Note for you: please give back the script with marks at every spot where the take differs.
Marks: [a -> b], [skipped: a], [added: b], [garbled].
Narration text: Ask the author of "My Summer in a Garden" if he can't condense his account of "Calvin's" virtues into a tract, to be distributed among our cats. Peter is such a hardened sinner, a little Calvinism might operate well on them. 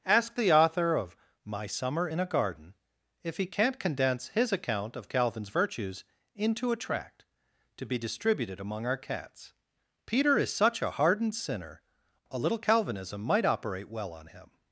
Ask the author of "My Summer in a Garden" if he can't condense his account of "Calvin's" virtues into a tract, to be distributed among our cats. Peter is such a hardened sinner, a little Calvinism might operate well on [them. -> him]